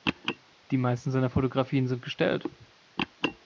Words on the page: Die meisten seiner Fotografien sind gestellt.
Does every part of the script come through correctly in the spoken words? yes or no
yes